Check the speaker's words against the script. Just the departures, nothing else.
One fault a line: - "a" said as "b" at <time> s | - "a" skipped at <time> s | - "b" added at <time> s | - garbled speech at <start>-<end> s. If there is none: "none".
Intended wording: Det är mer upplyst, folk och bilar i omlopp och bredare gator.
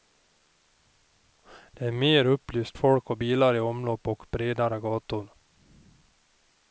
none